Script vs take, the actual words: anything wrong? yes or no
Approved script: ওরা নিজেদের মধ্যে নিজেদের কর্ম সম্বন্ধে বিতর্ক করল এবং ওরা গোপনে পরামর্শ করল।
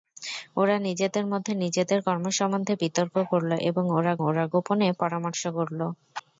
yes